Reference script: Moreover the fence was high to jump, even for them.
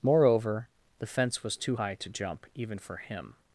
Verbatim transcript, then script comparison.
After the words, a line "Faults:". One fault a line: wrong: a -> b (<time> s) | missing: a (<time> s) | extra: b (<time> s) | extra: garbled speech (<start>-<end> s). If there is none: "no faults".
Moreover the fence was too high to jump, even for him.
Faults:
extra: too (1.6 s)
wrong: them -> him (3.0 s)